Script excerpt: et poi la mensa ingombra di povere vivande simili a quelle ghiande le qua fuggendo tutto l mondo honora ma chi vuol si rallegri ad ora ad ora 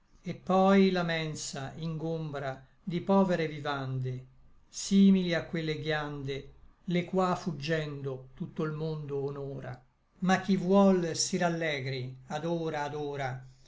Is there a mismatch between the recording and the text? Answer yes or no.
no